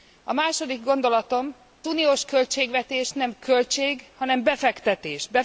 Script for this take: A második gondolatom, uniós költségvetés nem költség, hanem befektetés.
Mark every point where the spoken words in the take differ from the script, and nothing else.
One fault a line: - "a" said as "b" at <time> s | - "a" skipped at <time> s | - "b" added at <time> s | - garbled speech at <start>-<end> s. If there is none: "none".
none